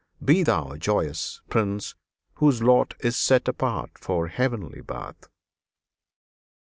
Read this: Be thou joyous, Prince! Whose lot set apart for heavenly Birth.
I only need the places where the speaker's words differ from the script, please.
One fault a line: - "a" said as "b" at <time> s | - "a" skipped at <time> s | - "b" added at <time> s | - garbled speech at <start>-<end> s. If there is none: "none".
- "is" added at 3.0 s